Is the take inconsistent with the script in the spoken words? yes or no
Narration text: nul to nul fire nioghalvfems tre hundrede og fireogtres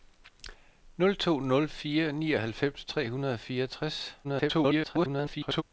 yes